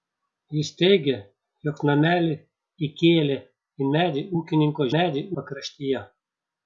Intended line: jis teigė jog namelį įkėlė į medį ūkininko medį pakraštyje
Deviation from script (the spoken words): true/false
false